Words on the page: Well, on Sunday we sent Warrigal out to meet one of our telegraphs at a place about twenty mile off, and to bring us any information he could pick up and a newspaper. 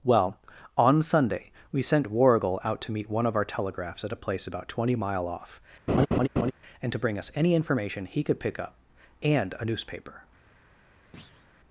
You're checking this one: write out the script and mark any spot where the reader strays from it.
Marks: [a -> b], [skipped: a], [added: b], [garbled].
Well, on Sunday we sent Warrigal out to meet one of our telegraphs at a place about twenty mile off, and to bring us any information he could pick up and a newspaper.